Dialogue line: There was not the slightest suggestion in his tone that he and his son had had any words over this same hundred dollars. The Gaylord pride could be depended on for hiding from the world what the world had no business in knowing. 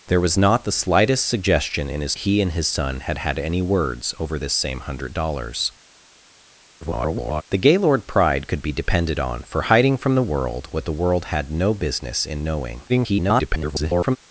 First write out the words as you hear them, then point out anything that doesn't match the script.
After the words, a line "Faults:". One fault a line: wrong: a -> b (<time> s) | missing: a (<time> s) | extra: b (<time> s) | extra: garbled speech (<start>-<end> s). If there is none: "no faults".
There was not the slightest suggestion in his he and his son had had any words over this same hundred dollars. [garbled] The Gaylord pride could be depended on for hiding from the world what the world had no business in knowing. [garbled]
Faults:
missing: tone that (2.1 s)
extra: garbled speech (6.8-7.4 s)
extra: garbled speech (12.9-14.2 s)